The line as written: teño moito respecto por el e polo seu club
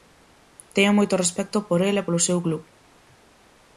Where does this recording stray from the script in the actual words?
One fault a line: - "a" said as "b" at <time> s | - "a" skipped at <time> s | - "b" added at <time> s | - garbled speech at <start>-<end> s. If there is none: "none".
none